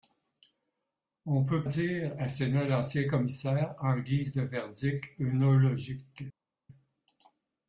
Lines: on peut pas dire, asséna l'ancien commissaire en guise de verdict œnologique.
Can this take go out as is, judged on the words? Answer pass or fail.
fail